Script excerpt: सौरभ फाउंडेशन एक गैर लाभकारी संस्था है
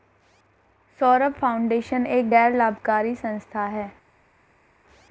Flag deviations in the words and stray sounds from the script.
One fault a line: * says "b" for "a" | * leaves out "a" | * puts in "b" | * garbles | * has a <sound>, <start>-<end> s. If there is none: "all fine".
all fine